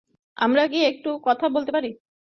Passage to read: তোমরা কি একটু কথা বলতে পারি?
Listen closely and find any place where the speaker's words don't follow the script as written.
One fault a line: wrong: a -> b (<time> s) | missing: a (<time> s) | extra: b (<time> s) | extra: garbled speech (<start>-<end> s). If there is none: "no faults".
wrong: তোমরা -> আমরা (0.4 s)